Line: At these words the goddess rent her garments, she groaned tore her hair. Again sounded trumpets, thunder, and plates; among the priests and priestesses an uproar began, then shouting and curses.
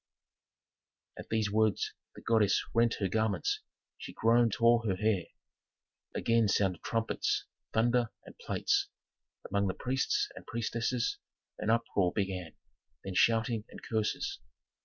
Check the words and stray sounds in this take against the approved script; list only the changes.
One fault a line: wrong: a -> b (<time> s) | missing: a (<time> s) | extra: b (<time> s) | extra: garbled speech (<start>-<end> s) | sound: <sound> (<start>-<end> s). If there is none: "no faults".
no faults